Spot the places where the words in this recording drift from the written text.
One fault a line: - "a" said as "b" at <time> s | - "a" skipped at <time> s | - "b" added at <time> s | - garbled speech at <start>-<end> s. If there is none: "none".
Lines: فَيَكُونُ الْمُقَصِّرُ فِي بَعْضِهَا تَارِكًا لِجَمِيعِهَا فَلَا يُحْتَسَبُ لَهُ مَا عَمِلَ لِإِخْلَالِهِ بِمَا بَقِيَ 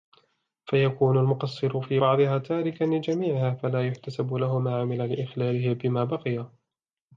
none